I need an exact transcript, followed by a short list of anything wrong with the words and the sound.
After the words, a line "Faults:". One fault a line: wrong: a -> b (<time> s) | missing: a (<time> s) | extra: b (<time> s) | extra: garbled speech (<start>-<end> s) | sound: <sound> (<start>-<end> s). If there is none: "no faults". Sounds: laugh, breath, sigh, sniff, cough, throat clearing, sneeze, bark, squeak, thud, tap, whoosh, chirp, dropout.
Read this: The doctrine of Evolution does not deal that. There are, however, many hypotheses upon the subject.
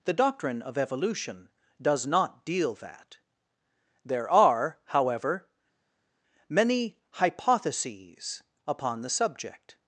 The doctrine of Evolution does not deal that. There are, however, many hypotheses upon the subject.
Faults:
no faults